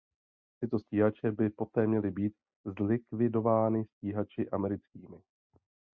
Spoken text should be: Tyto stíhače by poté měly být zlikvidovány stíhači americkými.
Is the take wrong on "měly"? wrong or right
right